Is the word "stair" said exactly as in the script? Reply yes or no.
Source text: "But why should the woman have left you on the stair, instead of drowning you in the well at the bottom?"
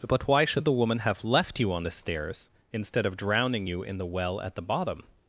no